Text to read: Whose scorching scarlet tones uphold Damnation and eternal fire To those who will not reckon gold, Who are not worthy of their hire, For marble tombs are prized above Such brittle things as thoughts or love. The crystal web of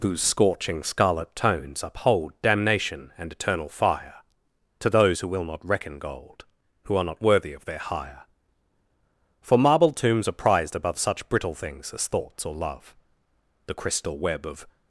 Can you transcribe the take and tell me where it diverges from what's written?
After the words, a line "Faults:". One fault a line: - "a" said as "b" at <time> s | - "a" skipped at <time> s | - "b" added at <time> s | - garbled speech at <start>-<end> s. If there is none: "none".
Whose scorching scarlet tones uphold Damnation and eternal fire To those who will not reckon gold, Who are not worthy of their hire, For marble tombs are prized above Such brittle things as thoughts or love. The crystal web of
Faults:
none